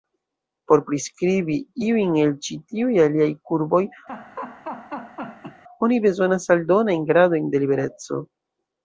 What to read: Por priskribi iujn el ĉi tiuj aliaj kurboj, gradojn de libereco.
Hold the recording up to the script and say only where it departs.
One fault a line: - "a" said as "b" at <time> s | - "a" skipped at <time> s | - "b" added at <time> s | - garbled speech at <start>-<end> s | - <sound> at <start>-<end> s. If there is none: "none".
- laugh at 4.1-5.6 s
- "oni bezonas aldonajn" added at 5.9 s